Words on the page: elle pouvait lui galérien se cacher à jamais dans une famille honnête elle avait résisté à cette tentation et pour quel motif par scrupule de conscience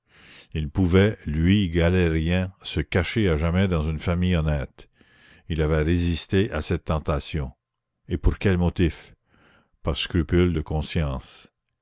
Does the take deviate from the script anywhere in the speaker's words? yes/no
yes